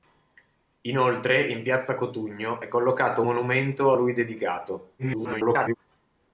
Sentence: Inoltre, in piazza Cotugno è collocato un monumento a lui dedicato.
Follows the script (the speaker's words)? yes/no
no